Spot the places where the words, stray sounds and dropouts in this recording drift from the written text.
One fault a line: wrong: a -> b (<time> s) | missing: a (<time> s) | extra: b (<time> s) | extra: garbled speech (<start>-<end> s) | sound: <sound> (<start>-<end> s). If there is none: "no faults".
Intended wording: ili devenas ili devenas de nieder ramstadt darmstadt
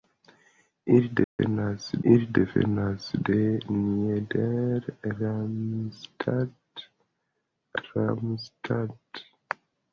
sound: dropout (1.2-1.4 s)